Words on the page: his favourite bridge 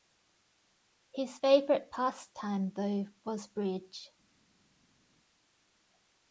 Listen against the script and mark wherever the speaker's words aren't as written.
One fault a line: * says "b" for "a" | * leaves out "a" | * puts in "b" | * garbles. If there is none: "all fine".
* puts in "pastime though was"